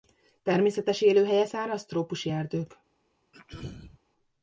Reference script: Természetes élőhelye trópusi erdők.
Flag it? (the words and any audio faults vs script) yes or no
yes